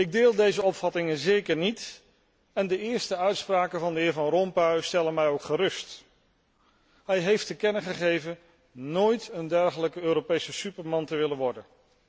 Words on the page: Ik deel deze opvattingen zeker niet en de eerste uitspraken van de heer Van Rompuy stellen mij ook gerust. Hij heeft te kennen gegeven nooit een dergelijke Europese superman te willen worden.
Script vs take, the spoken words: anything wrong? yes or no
no